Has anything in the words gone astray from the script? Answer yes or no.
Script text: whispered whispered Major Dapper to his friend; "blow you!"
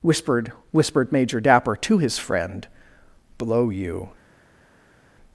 no